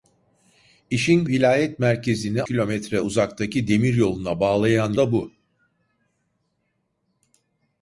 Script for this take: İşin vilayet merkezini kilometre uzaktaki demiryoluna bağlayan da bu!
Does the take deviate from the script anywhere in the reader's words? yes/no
no